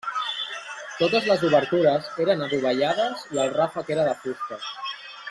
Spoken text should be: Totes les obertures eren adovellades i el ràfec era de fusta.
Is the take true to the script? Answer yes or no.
yes